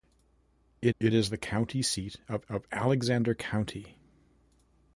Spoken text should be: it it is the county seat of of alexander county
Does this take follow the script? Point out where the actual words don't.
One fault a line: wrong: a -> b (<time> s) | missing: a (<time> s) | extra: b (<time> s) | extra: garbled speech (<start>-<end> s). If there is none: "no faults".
no faults